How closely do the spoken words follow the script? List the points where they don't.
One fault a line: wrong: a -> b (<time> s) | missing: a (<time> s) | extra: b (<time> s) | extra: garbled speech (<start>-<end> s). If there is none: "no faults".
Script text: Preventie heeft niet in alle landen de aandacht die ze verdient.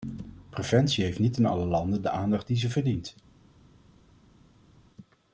no faults